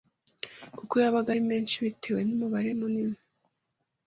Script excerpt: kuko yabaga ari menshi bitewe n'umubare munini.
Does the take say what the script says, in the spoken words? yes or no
yes